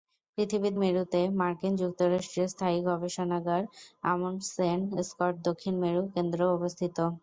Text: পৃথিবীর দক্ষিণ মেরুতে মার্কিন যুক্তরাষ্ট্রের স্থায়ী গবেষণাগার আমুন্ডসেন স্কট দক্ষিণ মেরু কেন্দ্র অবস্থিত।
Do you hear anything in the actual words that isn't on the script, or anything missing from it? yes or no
yes